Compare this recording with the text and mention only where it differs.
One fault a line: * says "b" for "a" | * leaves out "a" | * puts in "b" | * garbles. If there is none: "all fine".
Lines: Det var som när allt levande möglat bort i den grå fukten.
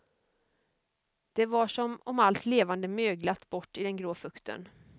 * says "om" for "när"